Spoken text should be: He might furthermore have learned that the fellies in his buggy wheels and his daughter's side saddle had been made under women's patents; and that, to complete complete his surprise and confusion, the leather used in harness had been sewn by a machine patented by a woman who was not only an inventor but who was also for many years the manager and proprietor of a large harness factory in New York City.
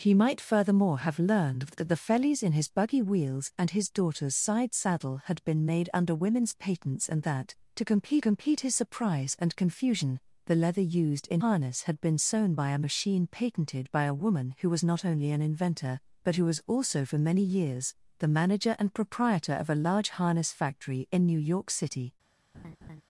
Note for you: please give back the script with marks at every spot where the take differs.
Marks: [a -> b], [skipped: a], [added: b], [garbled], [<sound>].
He might furthermore have learned that the fellies in his buggy wheels and his daughter's side saddle had been made under women's patents; and that, to complete complete his surprise and confusion, the leather used in harness had been sewn by a machine patented by a woman who was not only an inventor but who was also for many years the manager and proprietor of a large harness factory in New York City. [laugh]